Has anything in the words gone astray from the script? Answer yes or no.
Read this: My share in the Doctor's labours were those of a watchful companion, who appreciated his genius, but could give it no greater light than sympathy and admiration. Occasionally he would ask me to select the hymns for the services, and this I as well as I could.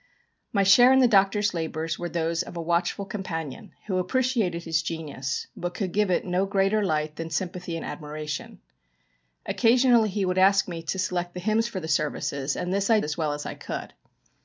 no